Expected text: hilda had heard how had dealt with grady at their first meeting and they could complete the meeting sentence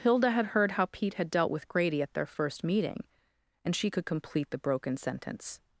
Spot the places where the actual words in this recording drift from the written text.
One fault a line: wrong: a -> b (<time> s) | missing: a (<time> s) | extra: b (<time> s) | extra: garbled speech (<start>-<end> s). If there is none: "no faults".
extra: pete (0.9 s)
wrong: they -> she (3.8 s)
wrong: meeting -> broken (4.6 s)